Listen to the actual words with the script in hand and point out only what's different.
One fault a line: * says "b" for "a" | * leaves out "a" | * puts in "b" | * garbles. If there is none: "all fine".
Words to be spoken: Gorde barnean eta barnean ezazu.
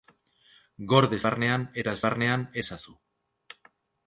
all fine